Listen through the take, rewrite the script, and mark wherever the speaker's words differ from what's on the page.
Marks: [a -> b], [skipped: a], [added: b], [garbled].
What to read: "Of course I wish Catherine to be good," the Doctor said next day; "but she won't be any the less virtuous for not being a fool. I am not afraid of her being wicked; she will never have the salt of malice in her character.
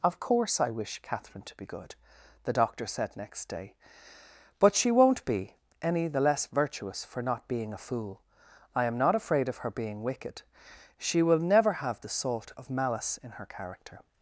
"Of course I wish Catherine to be good," the Doctor said next day; "but she won't be any the less virtuous for not being a fool. I am not afraid of her being wicked; she will never have the salt of malice in her character.